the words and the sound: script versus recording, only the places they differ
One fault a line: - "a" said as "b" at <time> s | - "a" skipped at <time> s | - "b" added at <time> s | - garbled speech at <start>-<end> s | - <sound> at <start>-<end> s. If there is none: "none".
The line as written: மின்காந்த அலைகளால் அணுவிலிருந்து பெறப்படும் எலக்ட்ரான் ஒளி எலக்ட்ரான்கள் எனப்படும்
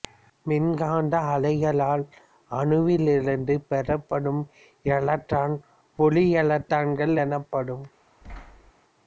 - thud at 8.2-8.7 s